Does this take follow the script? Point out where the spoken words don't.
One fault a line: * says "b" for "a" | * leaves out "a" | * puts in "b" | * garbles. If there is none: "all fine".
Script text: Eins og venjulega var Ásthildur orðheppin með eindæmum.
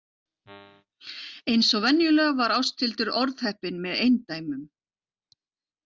all fine